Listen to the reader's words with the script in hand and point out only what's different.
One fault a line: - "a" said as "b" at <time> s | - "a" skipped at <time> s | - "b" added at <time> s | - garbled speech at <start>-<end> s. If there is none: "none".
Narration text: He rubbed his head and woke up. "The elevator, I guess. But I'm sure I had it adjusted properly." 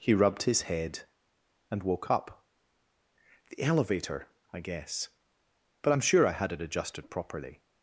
none